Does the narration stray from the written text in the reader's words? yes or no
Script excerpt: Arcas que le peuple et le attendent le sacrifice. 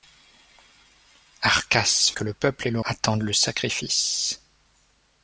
no